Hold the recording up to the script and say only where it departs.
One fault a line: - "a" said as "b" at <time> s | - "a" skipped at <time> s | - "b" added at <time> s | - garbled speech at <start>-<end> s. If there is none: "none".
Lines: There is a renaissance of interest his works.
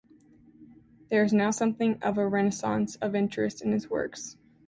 - "now something of" added at 1.3 s
- "in" added at 3.6 s